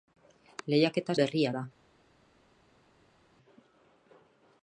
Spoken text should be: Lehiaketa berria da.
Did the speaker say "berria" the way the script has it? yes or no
yes